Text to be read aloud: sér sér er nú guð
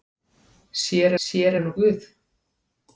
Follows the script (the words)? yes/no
yes